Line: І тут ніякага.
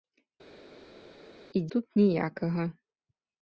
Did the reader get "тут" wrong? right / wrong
right